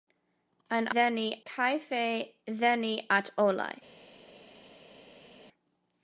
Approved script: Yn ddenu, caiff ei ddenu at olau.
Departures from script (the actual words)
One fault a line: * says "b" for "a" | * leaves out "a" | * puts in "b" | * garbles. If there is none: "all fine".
all fine